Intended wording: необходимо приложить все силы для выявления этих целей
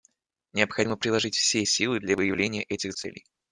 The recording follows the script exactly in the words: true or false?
true